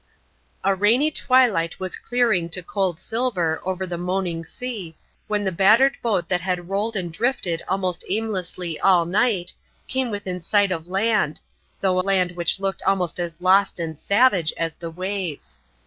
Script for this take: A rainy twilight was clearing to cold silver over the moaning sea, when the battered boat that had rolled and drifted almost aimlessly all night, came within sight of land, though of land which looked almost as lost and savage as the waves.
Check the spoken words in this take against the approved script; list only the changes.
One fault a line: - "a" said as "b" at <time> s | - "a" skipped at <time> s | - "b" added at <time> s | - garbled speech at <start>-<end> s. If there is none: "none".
- "of" skipped at 12.0 s